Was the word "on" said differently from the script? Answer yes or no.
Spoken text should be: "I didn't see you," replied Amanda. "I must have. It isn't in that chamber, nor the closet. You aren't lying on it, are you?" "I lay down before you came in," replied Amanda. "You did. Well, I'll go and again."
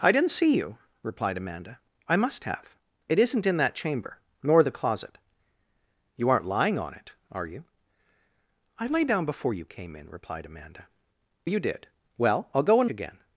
no